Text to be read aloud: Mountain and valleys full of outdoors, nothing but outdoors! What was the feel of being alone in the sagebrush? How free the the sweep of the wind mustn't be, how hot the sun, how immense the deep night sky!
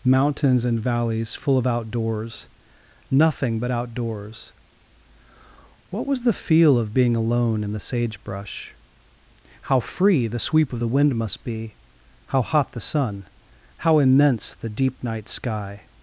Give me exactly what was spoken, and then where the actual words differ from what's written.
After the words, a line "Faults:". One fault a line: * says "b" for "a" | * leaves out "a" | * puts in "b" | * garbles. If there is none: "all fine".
Mountains and valleys full of outdoors, nothing but outdoors! What was the feel of being alone in the sagebrush? How free the sweep of the wind must be, how hot the sun, how immense the deep night sky!
Faults:
* says "Mountains" for "Mountain"
* leaves out "the"
* says "must" for "mustn't"